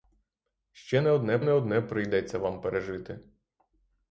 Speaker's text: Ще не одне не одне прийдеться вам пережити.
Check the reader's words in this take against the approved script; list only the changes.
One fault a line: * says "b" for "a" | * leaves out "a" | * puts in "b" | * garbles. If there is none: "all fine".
all fine